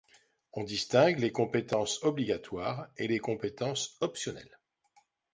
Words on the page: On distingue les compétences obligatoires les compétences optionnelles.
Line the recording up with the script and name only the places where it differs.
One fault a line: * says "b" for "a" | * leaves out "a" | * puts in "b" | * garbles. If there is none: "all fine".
* puts in "et"